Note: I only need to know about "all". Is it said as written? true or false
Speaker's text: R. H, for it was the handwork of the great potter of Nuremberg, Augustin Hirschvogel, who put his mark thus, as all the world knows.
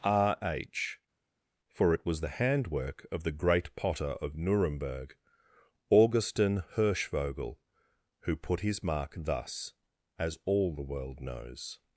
true